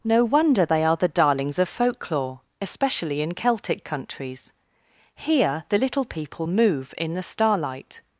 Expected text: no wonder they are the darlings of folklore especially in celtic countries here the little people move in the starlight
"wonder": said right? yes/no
yes